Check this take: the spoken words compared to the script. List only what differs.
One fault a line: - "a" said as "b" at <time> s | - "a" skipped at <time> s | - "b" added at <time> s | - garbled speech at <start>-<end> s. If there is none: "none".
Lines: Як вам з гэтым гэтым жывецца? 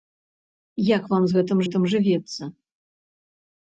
none